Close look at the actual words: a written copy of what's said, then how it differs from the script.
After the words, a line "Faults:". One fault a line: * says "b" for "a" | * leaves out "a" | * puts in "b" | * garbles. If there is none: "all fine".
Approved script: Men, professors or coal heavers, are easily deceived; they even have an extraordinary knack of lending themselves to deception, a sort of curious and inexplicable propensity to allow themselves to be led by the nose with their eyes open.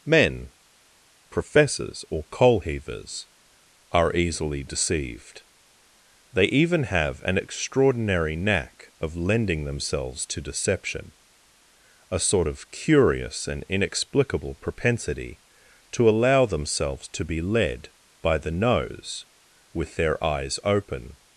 Men, professors or coal heavers, are easily deceived; they even have an extraordinary knack of lending themselves to deception, a sort of curious and inexplicable propensity to allow themselves to be led by the nose with their eyes open.
Faults:
all fine